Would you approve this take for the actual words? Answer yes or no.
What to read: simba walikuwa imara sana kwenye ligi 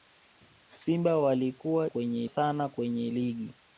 no